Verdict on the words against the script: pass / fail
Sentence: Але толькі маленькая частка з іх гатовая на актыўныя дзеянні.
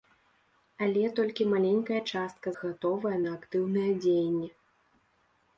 fail